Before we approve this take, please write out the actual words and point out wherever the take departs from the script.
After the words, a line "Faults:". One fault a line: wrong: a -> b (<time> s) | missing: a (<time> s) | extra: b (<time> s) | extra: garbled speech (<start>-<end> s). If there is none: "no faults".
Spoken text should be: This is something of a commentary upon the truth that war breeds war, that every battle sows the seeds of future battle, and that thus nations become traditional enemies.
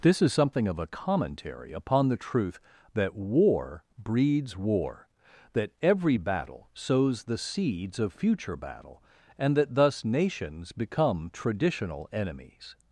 This is something of a commentary upon the truth that war breeds war, that every battle sows the seeds of future battle, and that thus nations become traditional enemies.
Faults:
no faults